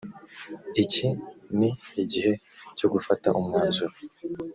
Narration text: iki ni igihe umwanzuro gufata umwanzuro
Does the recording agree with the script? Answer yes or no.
no